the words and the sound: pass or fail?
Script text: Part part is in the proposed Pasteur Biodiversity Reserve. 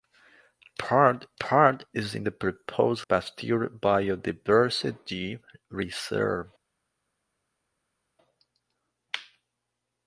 pass